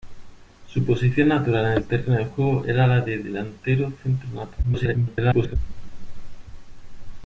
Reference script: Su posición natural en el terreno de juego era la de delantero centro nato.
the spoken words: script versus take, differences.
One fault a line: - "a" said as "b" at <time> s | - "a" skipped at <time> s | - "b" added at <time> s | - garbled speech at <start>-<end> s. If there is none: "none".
- garbled speech at 4.6-5.6 s